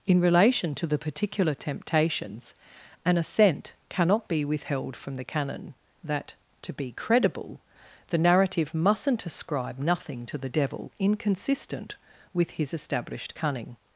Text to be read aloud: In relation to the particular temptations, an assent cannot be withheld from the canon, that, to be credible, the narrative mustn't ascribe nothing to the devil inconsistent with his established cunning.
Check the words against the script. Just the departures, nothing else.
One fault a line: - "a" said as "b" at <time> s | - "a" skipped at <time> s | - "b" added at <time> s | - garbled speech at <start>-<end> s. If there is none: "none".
none